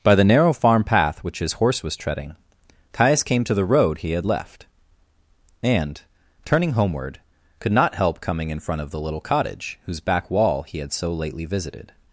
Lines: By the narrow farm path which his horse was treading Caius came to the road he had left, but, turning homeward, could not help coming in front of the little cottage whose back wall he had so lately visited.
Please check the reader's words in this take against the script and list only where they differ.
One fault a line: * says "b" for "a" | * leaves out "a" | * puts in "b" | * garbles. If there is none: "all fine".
* says "and" for "but"